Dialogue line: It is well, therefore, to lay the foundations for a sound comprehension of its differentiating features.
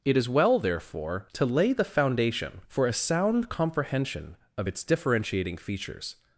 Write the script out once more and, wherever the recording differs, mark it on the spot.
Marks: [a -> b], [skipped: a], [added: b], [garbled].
It is well, therefore, to lay the [foundations -> foundation] for a sound comprehension of its differentiating features.